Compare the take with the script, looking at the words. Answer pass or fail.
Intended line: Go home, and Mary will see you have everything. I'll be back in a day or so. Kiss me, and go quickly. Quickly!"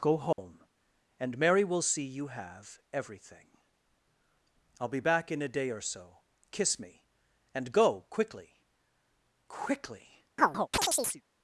pass